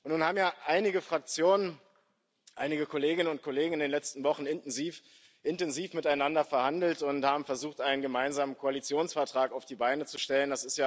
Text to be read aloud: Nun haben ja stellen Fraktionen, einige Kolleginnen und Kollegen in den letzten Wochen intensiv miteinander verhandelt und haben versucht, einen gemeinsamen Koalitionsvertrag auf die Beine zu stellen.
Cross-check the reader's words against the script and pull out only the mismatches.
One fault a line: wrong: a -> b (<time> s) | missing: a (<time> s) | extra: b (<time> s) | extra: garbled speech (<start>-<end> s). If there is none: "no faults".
wrong: stellen -> einige (0.7 s)